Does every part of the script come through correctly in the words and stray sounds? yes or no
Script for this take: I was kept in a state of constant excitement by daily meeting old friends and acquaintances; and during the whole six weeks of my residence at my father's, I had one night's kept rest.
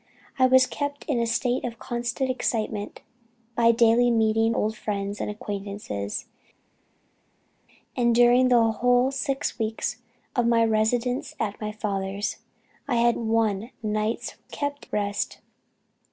yes